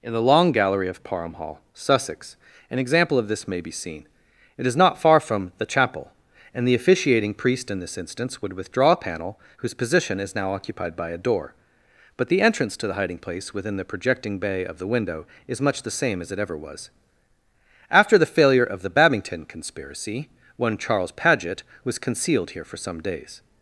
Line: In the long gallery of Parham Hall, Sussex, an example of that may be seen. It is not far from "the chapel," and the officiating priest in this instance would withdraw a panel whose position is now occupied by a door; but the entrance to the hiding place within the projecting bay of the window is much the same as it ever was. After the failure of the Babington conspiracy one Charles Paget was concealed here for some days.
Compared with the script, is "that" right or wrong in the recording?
wrong